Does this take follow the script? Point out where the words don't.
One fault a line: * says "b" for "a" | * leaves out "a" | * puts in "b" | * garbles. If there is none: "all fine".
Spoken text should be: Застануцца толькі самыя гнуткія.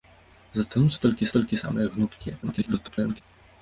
* puts in "толькі"
* garbles